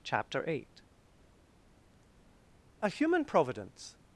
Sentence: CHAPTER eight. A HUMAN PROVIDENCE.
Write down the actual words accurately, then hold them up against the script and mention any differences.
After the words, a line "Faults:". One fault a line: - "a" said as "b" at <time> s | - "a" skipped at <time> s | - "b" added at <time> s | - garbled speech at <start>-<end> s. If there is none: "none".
CHAPTER eight. A HUMAN PROVIDENCE.
Faults:
none